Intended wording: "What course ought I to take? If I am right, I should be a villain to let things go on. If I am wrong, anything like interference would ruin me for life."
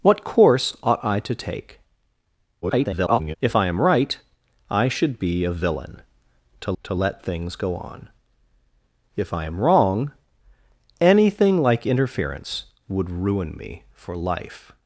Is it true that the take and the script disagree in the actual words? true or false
true